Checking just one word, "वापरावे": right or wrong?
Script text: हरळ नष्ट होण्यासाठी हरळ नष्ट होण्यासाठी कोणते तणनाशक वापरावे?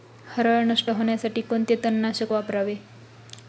right